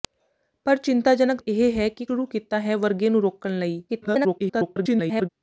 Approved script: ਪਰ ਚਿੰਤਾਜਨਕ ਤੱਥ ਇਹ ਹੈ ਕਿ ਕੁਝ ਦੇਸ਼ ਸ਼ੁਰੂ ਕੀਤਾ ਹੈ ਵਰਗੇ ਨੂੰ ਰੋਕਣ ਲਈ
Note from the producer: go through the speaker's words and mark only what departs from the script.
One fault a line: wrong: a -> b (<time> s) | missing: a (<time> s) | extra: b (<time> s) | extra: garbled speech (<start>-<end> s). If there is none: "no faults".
missing: ਤੱਥ (1.4 s)
missing: ਕੁਝ ਦੇਸ਼ (2.0 s)
extra: garbled speech (3.9-5.3 s)